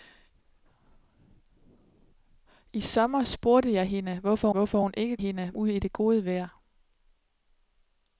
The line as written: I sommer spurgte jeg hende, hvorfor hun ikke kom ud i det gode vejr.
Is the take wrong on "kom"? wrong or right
wrong